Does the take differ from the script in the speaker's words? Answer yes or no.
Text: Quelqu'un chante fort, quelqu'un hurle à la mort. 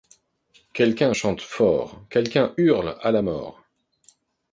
no